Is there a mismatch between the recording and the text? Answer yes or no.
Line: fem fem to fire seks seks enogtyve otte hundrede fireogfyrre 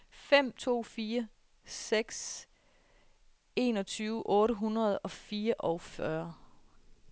yes